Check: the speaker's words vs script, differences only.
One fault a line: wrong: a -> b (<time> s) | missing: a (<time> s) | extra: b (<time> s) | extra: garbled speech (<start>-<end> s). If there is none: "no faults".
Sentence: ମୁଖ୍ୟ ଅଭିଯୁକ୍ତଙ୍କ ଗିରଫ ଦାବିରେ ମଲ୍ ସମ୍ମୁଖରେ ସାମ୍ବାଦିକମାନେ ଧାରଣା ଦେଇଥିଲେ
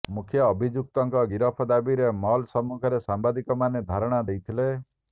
no faults